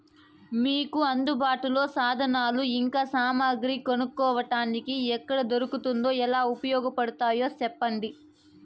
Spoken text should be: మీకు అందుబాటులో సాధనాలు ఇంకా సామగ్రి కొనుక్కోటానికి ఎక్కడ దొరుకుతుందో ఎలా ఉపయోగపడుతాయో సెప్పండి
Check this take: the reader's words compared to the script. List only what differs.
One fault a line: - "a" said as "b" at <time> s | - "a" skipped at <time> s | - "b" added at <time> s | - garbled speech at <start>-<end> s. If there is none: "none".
none